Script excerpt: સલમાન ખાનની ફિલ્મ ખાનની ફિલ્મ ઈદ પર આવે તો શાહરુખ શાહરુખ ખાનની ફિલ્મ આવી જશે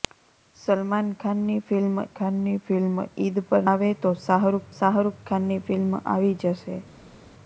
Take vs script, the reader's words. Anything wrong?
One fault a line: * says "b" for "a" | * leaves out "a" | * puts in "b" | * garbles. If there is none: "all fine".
all fine